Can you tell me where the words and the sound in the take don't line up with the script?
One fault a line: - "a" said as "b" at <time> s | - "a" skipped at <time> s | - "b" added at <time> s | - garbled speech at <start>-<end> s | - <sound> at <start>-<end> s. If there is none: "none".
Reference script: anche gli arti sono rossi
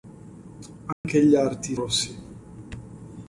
- dropout at 0.9-1.0 s
- "sono" skipped at 1.8 s